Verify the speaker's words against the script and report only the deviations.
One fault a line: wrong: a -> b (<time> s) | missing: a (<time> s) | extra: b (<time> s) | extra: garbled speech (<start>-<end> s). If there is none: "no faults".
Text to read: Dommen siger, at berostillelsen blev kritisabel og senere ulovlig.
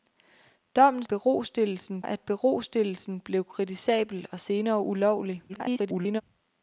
wrong: siger -> berostillelsen (1.0 s)
extra: garbled speech (5.5-6.2 s)